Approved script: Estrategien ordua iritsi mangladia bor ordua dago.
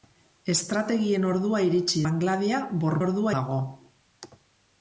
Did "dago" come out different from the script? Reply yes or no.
no